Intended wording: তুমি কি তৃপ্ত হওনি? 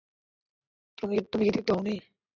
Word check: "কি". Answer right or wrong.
right